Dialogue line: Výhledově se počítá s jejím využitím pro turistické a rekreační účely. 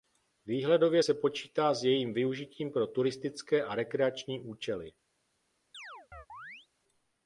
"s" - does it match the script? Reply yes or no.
yes